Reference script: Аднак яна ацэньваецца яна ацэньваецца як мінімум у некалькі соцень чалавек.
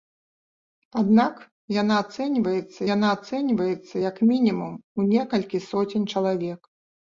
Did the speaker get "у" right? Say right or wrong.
right